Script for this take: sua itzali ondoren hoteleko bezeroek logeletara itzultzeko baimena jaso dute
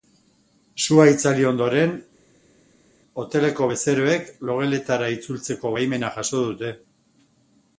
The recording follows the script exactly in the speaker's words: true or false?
true